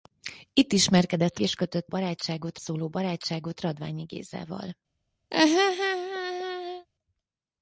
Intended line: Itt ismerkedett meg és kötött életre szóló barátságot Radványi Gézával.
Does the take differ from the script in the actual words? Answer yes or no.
yes